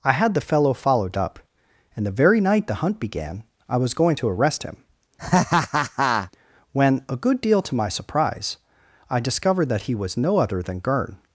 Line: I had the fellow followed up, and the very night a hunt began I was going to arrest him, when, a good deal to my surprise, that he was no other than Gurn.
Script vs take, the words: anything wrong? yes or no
yes